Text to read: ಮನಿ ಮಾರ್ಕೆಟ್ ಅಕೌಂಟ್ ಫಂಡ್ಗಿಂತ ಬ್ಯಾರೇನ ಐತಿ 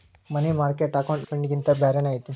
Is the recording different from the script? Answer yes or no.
no